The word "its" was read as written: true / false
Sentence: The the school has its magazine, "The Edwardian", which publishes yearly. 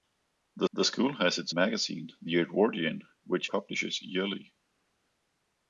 true